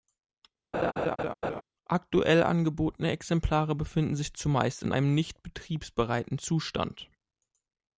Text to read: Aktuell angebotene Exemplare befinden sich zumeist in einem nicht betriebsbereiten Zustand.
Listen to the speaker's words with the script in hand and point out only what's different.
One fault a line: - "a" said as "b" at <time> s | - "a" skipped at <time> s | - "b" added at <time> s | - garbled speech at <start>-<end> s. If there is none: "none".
none